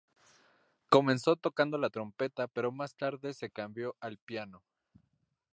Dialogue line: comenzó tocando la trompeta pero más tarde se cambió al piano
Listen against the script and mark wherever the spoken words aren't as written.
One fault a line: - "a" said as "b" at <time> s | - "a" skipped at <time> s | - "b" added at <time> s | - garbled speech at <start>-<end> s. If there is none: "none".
none